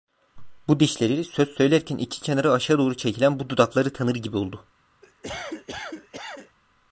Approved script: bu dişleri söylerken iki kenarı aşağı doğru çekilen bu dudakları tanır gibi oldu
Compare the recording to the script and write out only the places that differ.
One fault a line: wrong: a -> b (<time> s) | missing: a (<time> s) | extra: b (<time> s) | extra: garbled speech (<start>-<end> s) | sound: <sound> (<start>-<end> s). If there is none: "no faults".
extra: söz (1.2 s)
sound: cough (5.0-6.6 s)